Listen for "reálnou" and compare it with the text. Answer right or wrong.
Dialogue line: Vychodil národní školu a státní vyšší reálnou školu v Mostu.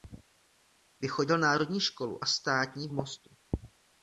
wrong